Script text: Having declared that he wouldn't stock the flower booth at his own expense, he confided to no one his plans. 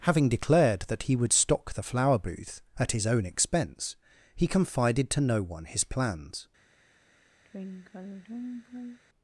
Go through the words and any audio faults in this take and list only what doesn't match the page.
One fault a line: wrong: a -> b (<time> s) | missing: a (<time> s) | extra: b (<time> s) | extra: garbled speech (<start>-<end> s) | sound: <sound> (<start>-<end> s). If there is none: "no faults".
wrong: wouldn't -> would (1.1 s)
sound: sigh (7.4-9.0 s)